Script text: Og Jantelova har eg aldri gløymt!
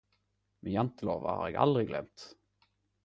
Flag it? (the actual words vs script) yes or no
yes